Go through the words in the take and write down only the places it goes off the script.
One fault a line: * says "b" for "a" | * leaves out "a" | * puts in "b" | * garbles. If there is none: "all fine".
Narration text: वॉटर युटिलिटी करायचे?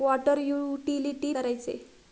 all fine